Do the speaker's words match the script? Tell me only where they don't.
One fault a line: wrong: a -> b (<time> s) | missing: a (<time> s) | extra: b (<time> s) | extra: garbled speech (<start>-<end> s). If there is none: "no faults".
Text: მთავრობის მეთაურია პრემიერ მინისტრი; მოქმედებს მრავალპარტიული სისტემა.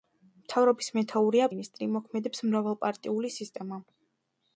missing: პრემიერ (1.5 s)